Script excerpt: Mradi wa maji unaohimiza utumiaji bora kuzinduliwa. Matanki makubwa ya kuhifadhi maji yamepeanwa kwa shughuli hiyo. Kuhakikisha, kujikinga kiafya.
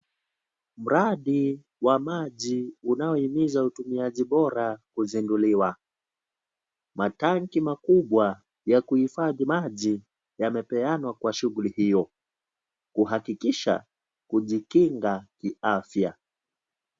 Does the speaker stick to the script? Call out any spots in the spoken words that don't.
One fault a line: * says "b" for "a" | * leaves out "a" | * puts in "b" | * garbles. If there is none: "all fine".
all fine